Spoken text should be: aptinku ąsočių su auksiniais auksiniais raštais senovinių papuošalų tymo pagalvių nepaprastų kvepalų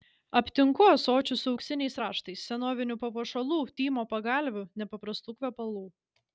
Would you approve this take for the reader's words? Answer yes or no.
no